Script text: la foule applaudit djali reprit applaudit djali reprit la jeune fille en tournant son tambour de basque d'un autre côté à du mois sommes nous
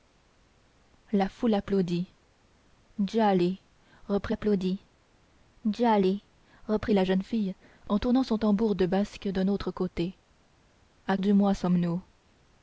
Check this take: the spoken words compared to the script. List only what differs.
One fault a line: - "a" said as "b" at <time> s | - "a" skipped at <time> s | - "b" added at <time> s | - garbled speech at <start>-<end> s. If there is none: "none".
none